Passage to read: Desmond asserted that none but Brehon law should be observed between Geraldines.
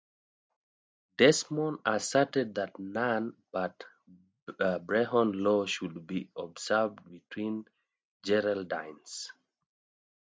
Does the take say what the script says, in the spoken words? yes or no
yes